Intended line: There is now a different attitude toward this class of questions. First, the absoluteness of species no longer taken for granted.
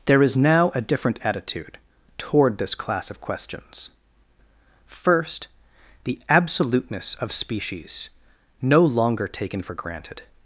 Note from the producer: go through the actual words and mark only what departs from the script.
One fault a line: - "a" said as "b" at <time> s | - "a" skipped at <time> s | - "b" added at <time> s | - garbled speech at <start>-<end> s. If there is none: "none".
none